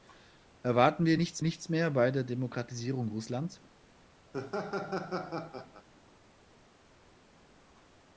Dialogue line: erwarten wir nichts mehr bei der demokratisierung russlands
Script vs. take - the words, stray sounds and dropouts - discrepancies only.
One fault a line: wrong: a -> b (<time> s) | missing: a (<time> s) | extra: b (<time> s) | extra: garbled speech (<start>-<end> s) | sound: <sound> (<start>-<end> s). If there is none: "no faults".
extra: nichts (1.4 s)
sound: laugh (4.3-5.9 s)